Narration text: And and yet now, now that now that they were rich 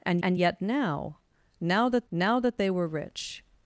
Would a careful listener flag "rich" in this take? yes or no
no